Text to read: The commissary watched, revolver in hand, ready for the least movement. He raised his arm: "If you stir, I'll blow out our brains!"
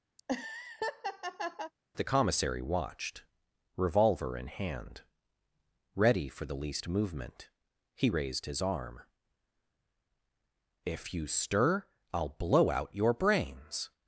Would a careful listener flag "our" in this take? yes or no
yes